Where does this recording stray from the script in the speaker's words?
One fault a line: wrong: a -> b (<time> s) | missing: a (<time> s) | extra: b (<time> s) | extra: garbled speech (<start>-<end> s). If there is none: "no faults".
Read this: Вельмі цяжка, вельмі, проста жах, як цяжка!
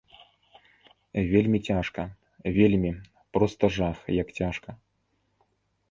no faults